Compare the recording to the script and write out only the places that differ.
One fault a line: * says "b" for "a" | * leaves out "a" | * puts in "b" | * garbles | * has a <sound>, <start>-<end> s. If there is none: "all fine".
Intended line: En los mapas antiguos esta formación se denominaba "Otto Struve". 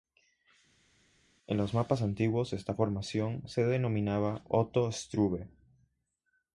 all fine